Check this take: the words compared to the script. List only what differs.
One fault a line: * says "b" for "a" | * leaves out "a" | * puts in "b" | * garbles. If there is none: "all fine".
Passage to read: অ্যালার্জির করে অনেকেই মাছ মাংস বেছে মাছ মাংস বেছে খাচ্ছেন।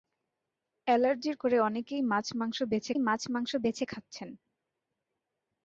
all fine